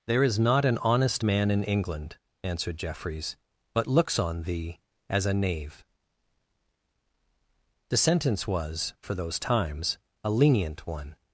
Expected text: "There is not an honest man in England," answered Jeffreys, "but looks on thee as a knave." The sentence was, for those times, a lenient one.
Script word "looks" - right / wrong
right